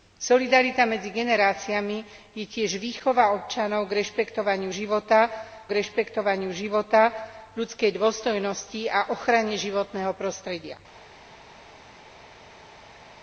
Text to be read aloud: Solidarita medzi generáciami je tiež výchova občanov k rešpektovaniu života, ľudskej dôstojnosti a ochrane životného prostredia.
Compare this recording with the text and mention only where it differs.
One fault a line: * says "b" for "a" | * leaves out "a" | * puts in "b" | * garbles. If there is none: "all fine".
* puts in "k rešpektovaniu života"